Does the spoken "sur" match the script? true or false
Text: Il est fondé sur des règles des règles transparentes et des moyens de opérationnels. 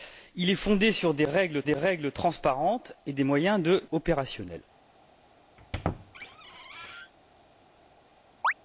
true